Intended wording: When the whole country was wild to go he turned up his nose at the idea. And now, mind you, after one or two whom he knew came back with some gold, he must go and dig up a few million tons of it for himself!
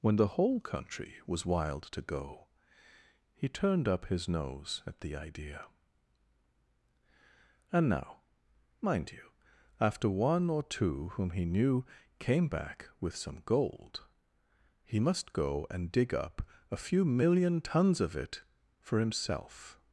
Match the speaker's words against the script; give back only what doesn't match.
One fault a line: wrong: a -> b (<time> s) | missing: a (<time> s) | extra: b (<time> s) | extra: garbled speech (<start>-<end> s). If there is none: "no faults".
no faults